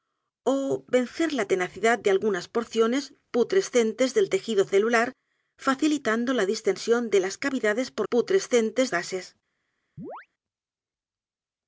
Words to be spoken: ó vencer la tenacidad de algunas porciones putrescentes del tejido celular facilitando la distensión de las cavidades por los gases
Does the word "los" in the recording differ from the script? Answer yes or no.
yes